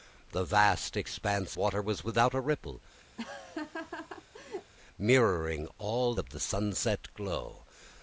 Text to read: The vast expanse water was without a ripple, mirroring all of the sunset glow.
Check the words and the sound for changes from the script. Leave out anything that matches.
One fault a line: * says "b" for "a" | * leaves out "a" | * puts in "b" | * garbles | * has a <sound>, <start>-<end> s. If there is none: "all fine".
* has a laugh, 3.2-4.7 s